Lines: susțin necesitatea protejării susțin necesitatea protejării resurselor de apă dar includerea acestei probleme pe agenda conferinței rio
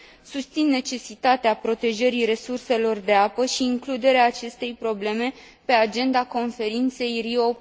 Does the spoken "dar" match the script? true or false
false